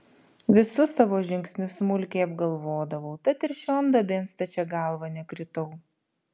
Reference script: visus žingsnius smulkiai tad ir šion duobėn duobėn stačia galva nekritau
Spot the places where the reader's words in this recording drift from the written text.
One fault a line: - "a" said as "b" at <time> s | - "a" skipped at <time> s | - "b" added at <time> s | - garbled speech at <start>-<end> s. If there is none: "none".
- "savo" added at 1.0 s
- "apgalvodavau" added at 2.3 s
- "duobėn" skipped at 4.3 s